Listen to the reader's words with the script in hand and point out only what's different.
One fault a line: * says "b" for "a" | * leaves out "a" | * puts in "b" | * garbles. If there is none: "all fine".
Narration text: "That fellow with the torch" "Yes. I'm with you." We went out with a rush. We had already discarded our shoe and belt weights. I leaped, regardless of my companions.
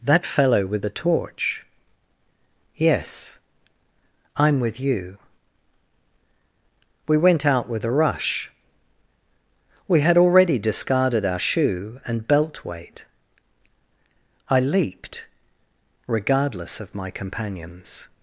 * says "weight" for "weights"